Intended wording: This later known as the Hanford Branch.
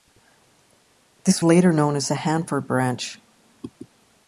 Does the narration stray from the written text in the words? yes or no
no